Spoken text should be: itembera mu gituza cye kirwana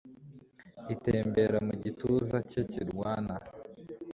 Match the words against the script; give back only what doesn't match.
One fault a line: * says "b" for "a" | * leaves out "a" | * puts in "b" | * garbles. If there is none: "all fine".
all fine